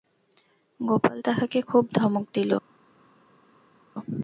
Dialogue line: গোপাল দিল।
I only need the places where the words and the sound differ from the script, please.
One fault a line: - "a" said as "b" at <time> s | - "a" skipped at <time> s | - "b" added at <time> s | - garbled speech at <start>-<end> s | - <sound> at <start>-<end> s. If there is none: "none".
- "তাহাকে খুব ধমক" added at 1.2 s